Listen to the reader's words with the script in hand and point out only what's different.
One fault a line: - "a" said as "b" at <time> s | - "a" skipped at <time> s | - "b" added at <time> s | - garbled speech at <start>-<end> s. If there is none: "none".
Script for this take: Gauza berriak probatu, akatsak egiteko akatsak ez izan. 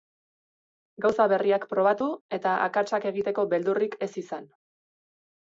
- "eta" added at 2.4 s
- "akatsak" said as "beldurrik" at 3.5 s